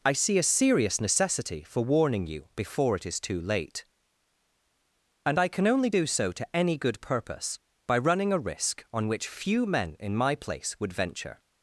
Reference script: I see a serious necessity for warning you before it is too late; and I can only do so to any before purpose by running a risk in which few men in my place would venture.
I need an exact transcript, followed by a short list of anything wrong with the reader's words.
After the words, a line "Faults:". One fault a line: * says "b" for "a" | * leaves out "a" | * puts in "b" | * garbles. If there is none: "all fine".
I see a serious necessity for warning you before it is too late; and I can only do so to any good purpose by running a risk on which few men in my place would venture.
Faults:
* says "good" for "before"
* says "on" for "in"